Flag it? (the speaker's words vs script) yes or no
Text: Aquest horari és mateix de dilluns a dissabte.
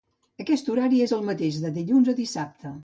yes